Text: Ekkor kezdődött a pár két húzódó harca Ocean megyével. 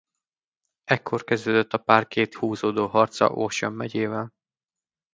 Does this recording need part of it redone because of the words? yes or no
no